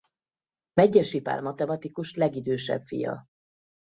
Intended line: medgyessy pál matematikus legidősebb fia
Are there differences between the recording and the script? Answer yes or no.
no